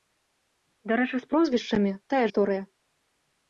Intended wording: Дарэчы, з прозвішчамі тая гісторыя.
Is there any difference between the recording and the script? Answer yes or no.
no